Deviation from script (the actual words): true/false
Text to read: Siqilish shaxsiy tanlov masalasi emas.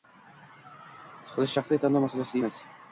false